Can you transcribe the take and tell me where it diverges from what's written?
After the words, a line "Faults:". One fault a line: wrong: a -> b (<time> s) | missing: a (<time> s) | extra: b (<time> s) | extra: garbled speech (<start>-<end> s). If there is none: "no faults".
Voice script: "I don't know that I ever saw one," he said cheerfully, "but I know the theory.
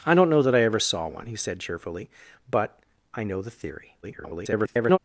"I don't know that I ever saw one," he said cheerfully, "but I know the theory. [garbled]
Faults:
extra: garbled speech (4.0-5.0 s)